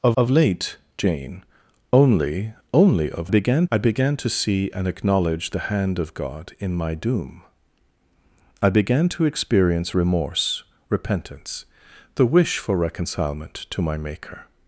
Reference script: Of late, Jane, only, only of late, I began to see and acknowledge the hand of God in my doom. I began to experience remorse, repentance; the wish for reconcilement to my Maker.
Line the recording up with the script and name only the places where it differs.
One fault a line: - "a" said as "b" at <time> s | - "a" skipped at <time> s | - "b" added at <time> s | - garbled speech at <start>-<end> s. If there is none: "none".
- "of" added at 0.2 s
- "late" said as "began" at 3.3 s